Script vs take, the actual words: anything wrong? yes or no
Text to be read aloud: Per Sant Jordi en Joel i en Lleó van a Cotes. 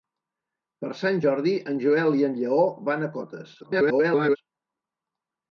yes